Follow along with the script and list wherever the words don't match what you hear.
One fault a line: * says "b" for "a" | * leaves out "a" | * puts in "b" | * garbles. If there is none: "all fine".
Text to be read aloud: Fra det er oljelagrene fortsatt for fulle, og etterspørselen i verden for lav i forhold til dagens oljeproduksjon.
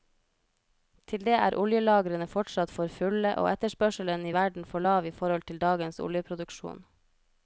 * says "Til" for "Fra"